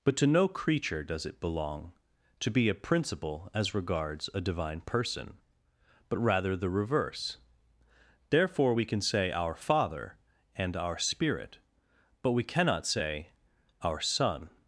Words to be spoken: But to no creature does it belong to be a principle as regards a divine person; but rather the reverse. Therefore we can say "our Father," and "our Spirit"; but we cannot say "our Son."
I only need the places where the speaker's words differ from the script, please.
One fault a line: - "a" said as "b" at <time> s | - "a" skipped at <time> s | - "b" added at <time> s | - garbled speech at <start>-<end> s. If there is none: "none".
none